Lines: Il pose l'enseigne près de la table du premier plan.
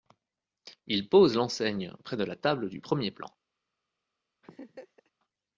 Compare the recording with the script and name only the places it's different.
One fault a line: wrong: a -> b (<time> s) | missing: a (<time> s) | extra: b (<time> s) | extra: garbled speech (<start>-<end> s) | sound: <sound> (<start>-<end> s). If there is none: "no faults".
sound: laugh (4.4-5.1 s)